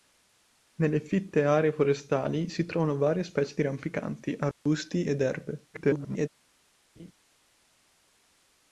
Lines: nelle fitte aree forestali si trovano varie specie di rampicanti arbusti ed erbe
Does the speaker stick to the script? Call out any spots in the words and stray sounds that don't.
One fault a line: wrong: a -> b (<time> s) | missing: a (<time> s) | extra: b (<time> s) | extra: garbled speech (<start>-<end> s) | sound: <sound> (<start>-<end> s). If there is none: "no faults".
sound: dropout (4.5-4.7 s)
extra: garbled speech (5.7-6.3 s)
sound: laugh (7.0-7.1 s)